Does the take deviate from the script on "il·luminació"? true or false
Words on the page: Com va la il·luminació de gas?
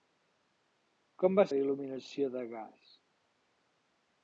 false